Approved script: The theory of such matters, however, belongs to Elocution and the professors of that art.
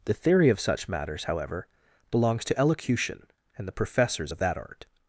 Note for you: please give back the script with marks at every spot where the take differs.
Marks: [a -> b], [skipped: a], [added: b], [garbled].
The theory of such matters, however, belongs to Elocution and the professors of that art.